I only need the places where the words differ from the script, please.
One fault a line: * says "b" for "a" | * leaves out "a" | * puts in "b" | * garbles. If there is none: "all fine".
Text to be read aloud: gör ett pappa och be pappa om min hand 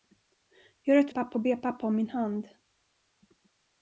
all fine